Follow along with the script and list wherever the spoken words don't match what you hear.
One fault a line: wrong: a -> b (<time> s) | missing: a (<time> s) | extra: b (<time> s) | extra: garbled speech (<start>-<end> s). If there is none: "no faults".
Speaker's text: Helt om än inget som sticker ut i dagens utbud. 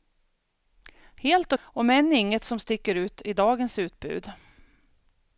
no faults